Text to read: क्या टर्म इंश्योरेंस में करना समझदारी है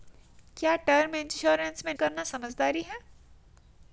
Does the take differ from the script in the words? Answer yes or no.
no